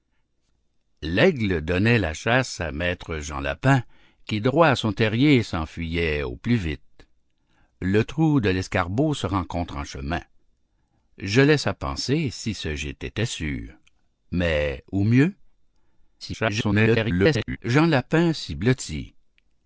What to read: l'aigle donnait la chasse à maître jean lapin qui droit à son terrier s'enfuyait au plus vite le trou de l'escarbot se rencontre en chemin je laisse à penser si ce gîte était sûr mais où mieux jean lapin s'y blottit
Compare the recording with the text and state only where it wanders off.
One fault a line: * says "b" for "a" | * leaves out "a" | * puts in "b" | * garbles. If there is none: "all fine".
* garbles